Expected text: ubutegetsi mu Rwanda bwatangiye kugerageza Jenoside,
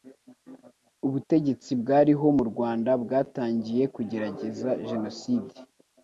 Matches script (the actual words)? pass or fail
fail